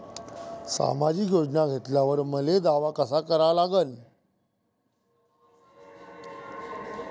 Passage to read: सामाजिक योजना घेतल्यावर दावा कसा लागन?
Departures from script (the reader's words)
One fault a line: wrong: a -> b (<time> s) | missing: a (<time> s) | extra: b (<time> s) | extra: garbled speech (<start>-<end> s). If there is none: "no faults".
extra: मले (2.2 s)
extra: करा (3.2 s)